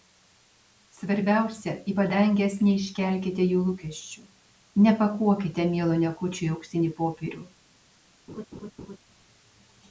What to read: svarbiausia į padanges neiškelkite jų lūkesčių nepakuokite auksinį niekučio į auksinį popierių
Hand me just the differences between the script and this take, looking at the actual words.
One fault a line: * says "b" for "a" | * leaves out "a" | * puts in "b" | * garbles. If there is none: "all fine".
* says "mielo" for "auksinį"